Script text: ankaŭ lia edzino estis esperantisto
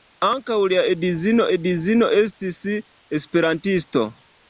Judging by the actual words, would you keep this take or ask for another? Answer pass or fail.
fail